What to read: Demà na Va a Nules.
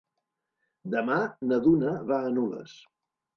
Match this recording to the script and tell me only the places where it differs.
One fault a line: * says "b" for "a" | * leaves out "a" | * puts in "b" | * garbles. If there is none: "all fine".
* puts in "Duna"